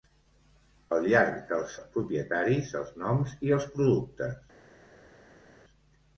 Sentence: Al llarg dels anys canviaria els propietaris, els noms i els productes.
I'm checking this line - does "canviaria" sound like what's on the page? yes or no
no